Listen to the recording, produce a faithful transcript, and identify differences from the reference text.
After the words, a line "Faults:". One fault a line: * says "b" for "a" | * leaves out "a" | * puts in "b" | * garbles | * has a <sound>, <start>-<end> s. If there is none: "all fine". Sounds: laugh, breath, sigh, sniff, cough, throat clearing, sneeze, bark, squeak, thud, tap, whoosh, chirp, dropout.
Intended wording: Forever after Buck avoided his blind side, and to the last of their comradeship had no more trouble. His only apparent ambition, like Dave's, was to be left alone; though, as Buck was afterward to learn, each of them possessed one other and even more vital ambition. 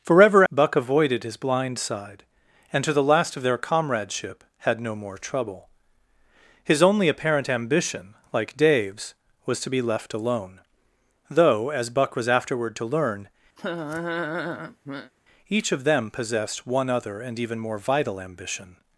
Forever Buck avoided his blind side, and to the last of their comradeship had no more trouble. His only apparent ambition, like Dave's, was to be left alone; though, as Buck was afterward to learn, each of them possessed one other and even more vital ambition.
Faults:
* leaves out "after"
* has a laugh, 13.6-15.1 s